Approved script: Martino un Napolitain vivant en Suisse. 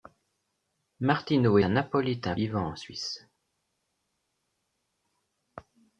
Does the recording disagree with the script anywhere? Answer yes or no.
no